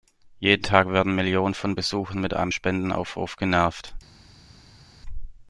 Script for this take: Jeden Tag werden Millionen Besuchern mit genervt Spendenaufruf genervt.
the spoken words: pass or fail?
fail